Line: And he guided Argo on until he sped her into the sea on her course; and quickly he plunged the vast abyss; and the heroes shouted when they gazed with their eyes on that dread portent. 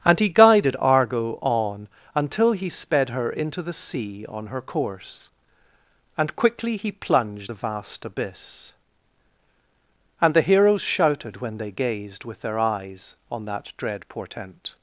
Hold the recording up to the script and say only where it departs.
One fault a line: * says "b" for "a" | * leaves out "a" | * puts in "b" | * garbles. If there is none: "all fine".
all fine